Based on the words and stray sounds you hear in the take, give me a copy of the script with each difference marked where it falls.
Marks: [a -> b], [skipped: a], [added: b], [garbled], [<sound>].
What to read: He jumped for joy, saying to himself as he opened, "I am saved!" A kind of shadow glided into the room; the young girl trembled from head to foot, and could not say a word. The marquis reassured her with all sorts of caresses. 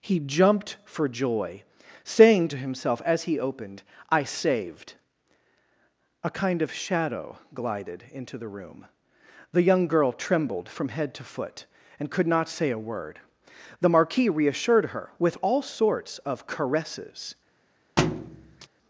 He jumped for joy, saying to himself as he opened, "I [skipped: am] saved!" A kind of shadow glided into the room; the young girl trembled from head to foot, and could not say a word. The marquis reassured her with all sorts of caresses. [thud]